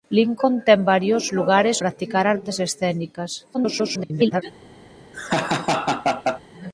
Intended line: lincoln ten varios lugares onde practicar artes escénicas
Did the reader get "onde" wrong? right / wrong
wrong